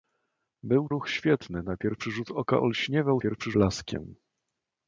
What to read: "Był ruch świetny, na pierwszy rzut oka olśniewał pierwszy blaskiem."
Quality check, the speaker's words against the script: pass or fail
pass